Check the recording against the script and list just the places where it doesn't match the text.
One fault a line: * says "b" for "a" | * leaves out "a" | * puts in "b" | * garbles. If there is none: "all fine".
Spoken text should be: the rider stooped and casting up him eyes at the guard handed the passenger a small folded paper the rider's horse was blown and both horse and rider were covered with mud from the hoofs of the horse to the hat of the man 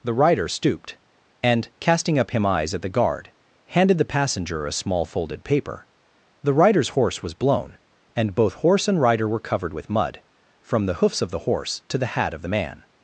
all fine